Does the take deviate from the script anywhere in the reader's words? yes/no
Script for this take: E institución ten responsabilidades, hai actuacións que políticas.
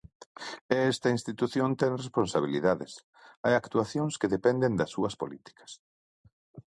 yes